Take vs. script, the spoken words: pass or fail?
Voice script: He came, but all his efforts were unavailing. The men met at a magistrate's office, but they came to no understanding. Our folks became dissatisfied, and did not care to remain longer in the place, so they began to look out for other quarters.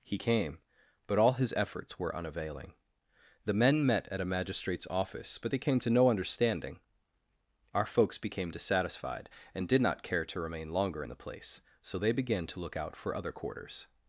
pass